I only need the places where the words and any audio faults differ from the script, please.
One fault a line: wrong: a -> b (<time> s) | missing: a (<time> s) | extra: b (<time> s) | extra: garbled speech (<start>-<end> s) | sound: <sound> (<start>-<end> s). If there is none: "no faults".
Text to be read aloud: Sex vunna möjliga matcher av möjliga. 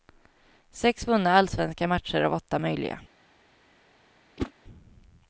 wrong: möjliga -> allsvenska (1.3 s)
extra: åtta (2.3 s)
sound: whoosh (4.4-4.5 s)